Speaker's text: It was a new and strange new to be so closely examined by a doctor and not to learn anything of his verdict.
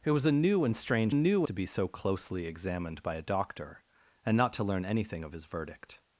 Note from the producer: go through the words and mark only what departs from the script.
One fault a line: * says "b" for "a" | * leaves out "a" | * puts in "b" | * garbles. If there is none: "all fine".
all fine